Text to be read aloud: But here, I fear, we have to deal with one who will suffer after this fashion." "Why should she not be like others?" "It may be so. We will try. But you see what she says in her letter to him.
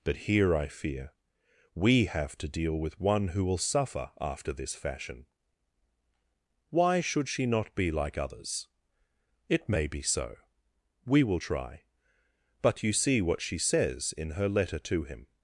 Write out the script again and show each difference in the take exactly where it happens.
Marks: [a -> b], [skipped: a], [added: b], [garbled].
But here, I fear, we have to deal with one who will suffer after this fashion." "Why should she not be like others?" "It may be so. We will try. But you see what she says in her letter to him.